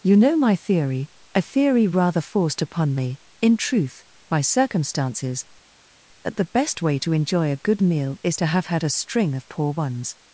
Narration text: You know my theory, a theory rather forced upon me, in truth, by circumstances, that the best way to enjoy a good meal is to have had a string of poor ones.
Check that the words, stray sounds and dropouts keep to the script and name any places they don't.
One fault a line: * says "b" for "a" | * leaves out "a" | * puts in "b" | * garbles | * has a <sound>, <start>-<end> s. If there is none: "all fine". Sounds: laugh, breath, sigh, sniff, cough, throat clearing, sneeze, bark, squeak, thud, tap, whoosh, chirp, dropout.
all fine